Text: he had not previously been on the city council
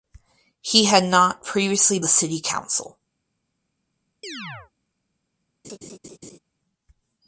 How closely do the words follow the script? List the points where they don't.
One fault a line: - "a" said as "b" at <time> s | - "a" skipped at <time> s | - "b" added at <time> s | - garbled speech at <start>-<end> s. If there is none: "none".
- "been on" skipped at 2.0 s